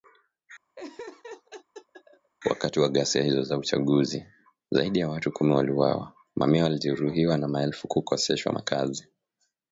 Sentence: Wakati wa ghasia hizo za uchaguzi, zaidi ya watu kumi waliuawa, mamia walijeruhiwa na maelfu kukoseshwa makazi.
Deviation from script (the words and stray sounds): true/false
true